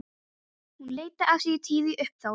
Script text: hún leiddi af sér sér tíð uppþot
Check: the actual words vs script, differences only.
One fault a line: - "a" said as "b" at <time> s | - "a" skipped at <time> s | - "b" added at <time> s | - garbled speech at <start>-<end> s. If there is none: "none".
- "sér" skipped at 1.6 s